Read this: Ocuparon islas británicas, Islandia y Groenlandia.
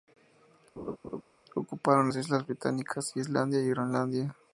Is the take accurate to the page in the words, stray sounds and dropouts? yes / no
no